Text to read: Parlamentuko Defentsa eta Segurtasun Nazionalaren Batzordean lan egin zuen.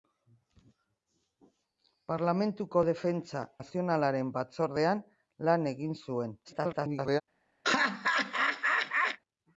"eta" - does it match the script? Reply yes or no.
no